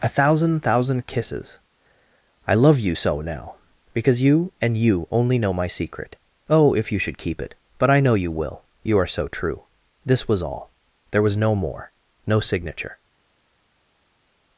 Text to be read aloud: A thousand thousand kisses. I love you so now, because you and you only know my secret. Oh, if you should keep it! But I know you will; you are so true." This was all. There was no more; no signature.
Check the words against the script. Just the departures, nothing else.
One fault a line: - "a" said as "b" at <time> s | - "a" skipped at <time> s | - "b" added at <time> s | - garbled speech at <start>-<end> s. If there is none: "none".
none